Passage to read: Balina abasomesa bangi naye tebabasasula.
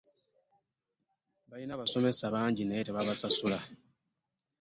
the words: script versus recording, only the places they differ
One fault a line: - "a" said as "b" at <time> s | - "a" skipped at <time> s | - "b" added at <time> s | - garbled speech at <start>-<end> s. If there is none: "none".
none